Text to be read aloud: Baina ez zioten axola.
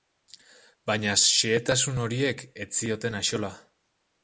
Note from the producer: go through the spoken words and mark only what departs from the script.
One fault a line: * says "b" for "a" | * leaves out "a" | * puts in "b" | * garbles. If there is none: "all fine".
* puts in "xehetasun horiek"